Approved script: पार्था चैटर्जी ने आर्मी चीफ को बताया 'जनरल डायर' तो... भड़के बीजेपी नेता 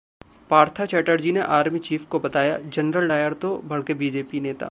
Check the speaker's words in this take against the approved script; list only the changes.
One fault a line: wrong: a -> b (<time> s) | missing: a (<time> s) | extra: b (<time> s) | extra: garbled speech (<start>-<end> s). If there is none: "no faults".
no faults